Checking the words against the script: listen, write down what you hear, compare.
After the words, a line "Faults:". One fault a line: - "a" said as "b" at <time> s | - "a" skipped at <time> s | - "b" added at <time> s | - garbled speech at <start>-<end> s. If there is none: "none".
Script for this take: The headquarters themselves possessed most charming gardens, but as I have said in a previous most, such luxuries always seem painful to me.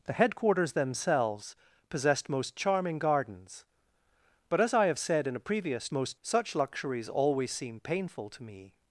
The headquarters themselves possessed most charming gardens, but as I have said in a previous most, such luxuries always seem painful to me.
Faults:
none